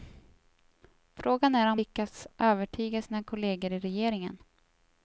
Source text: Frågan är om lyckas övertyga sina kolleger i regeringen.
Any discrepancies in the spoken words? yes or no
no